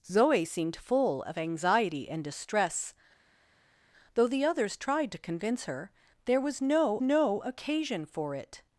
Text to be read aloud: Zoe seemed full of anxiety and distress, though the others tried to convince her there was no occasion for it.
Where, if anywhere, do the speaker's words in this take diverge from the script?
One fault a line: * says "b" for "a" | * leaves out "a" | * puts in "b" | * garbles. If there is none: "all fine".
* puts in "no"